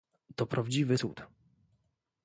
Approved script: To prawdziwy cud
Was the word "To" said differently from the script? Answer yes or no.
no